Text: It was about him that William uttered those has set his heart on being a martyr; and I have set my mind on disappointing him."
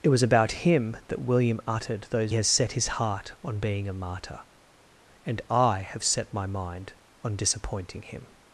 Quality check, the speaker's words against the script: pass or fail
pass